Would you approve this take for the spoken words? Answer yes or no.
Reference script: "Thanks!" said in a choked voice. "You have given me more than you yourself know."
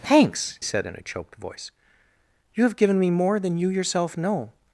yes